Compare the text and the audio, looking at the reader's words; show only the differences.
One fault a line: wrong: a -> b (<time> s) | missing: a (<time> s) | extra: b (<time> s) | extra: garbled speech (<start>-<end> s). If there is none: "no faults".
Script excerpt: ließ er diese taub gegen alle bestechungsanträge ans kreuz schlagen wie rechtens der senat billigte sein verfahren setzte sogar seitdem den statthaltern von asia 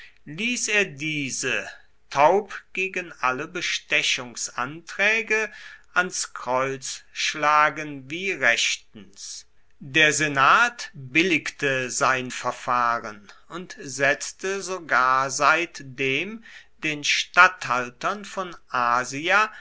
extra: und (13.5 s)